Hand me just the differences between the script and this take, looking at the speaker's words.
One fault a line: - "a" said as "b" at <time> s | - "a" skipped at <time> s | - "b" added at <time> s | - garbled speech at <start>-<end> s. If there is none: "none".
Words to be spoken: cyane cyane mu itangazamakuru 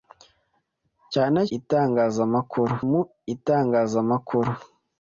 - "cyane" said as "itangazamakuru" at 1.6 s